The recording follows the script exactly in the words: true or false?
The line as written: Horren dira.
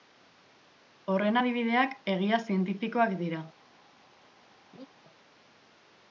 false